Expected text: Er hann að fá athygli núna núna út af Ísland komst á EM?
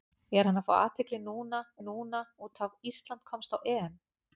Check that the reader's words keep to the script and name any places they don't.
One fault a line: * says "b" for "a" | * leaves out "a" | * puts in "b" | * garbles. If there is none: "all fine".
all fine